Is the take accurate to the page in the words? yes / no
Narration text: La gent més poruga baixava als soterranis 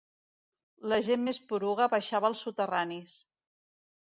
yes